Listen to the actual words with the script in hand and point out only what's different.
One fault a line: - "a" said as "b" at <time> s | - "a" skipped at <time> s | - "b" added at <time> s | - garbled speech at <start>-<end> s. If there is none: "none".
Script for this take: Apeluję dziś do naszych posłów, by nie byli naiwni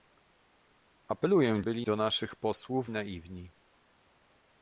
- "dziś" said as "byli" at 1.6 s
- "by nie byli" skipped at 2.9 s